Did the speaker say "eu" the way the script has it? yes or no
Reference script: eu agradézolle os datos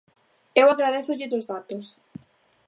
yes